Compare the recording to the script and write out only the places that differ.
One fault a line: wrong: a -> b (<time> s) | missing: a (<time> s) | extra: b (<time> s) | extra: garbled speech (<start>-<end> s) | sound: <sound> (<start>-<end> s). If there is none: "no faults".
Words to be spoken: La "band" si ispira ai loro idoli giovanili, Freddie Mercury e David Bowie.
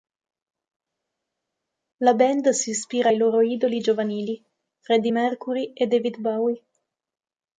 no faults